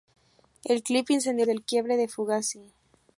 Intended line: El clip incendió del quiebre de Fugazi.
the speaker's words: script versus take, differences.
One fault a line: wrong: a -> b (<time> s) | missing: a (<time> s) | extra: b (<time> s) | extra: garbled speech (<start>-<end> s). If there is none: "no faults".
no faults